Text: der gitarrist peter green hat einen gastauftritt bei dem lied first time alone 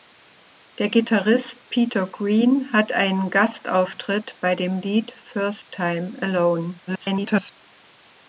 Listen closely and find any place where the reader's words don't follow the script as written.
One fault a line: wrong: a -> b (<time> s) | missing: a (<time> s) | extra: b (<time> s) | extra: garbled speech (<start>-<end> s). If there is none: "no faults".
extra: garbled speech (6.9-7.5 s)